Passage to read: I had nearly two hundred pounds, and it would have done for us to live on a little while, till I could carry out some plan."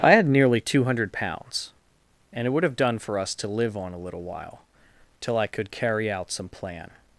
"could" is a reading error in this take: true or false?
false